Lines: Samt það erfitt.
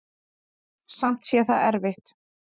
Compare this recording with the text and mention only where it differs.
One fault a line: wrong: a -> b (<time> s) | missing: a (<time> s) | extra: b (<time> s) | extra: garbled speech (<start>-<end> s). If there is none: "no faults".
extra: sé (1.3 s)